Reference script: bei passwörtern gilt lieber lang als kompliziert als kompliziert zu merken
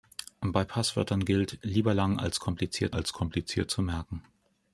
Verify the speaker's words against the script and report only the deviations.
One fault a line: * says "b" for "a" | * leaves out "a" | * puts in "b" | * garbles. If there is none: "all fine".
all fine